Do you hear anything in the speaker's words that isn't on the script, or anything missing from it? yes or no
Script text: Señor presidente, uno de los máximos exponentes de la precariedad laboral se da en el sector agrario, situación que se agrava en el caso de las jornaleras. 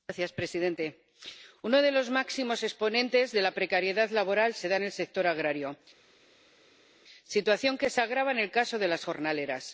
no